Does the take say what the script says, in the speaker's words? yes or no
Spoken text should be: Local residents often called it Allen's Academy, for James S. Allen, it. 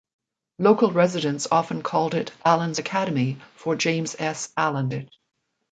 yes